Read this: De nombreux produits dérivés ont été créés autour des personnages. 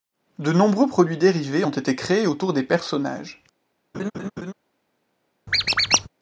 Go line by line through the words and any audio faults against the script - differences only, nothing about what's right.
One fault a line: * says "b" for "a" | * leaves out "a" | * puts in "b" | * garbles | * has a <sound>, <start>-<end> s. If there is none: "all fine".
* has a laugh, 3.9-4.5 s
* has a squeak, 5.5-6.1 s